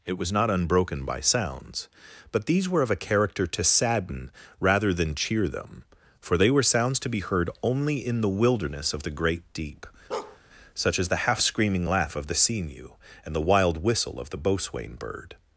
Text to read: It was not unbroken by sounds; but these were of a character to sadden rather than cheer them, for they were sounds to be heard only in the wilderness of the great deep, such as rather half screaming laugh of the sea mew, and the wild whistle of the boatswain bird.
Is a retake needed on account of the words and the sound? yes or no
yes